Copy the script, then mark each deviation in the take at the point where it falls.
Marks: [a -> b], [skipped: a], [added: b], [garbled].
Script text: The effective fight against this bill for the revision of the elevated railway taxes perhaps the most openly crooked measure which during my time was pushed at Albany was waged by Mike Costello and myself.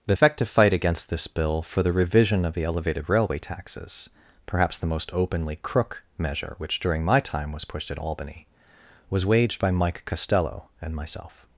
The effective fight against this bill for the revision of the elevated railway taxes perhaps the most openly [crooked -> crook] measure which during my time was pushed at Albany was waged by Mike Costello and myself.